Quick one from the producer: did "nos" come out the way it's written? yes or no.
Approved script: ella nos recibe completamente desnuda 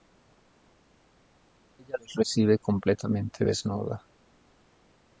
no